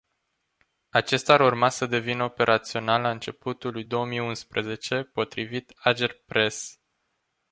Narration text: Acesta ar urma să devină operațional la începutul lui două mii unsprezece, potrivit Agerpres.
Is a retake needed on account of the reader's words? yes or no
no